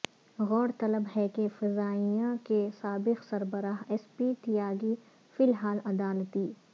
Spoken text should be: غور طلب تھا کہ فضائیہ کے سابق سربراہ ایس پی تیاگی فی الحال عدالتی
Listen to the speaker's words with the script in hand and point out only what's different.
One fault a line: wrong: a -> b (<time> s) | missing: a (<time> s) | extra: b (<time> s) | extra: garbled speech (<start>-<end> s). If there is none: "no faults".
wrong: تھا -> ہے (1.2 s)